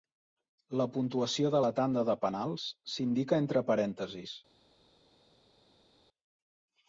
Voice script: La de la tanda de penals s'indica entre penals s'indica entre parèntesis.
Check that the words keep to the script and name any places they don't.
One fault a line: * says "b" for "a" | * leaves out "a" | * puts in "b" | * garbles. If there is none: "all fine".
* puts in "puntuació"
* leaves out "penals s'indica entre"